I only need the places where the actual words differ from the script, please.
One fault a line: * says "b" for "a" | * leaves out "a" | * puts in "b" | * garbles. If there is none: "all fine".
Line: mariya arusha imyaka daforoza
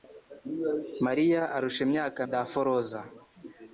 all fine